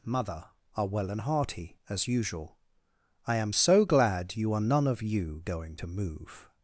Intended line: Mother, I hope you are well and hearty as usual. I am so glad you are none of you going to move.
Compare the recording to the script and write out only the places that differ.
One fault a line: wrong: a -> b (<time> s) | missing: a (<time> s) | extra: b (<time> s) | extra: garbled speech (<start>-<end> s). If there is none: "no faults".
missing: I hope you (0.5 s)